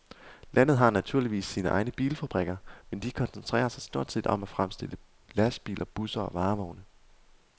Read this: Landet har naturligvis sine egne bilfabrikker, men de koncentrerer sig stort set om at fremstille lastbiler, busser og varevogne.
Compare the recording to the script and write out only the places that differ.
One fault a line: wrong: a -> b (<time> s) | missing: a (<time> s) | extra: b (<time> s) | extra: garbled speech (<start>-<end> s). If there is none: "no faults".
no faults